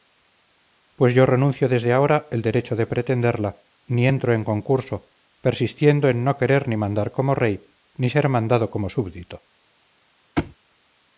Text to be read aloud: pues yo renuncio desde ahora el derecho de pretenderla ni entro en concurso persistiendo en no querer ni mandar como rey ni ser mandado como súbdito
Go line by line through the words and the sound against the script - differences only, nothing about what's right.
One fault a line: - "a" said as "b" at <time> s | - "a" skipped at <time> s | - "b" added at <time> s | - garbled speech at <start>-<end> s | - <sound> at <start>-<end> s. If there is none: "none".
- thud at 10.4-10.6 s